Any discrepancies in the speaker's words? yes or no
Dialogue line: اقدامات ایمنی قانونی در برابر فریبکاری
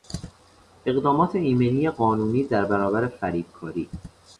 no